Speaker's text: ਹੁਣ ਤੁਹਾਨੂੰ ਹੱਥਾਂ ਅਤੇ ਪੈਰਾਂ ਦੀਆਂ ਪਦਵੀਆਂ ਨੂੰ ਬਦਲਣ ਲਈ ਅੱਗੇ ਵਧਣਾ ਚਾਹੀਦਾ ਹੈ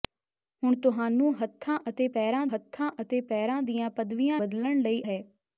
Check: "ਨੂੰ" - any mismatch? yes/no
yes